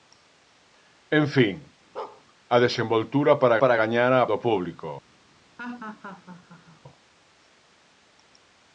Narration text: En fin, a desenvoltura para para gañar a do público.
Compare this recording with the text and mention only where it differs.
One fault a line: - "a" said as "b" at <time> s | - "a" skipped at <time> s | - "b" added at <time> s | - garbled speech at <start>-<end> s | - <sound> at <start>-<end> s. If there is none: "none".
- bark at 2.0-2.2 s
- laugh at 5.6-6.8 s